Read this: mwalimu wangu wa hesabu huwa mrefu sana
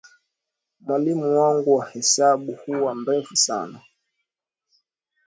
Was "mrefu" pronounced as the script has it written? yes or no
yes